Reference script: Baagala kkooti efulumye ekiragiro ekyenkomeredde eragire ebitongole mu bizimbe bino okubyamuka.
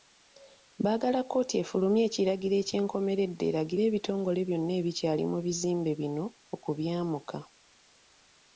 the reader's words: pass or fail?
fail